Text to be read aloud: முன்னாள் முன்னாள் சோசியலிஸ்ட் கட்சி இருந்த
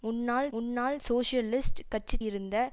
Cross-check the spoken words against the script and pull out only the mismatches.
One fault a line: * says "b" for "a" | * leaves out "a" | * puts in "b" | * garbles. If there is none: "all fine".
all fine